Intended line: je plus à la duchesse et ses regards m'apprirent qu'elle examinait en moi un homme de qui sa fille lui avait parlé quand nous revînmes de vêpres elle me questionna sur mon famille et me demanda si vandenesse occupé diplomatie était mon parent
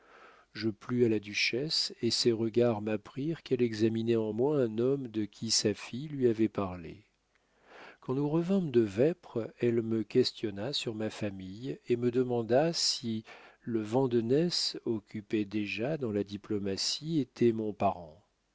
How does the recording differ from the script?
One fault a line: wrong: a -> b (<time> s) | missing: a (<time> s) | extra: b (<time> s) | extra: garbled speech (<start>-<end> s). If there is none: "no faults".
wrong: mon -> ma (10.9 s)
extra: le (13.6 s)
extra: déjà dans la (15.4 s)